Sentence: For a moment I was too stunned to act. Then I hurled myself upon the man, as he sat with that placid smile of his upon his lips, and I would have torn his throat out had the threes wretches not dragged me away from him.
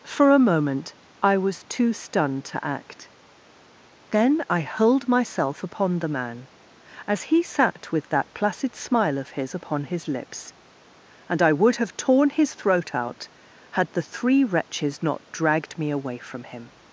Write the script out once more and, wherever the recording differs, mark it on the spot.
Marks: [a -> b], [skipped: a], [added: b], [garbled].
For a moment I was too stunned to act. Then I hurled myself upon the man, as he sat with that placid smile of his upon his lips, and I would have torn his throat out had the [threes -> three] wretches not dragged me away from him.